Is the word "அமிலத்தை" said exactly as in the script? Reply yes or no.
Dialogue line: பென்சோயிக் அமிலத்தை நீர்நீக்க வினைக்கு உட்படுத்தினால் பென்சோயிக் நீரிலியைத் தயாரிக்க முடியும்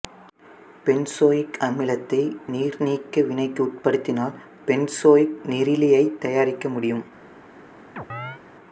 yes